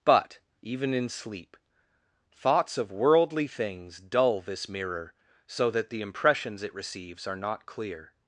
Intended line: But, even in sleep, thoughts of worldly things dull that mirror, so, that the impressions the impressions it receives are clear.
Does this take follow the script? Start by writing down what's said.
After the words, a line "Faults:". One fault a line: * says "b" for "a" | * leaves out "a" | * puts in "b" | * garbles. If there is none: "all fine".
But, even in sleep, thoughts of worldly things dull this mirror, so, that the impressions it receives are not clear.
Faults:
* says "this" for "that"
* leaves out "the impressions"
* puts in "not"